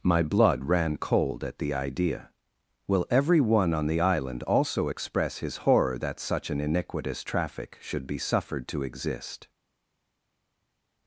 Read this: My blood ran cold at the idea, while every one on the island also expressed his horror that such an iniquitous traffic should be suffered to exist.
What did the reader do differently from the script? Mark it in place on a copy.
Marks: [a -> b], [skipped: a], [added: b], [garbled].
My blood ran cold at the idea, [while -> will] every one on the island also [expressed -> express] his horror that such an iniquitous traffic should be suffered to exist.